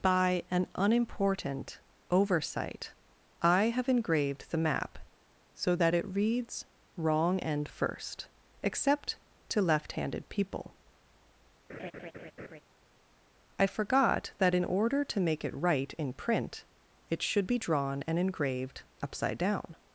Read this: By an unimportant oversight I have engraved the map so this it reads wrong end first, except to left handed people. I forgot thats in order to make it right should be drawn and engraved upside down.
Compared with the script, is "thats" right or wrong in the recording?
wrong